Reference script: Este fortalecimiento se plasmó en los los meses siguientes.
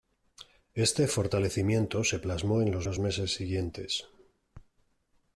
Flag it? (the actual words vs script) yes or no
no